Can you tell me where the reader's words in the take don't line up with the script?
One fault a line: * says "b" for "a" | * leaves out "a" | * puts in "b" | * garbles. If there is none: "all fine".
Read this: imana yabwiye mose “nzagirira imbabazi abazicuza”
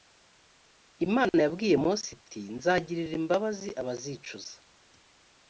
* puts in "iti"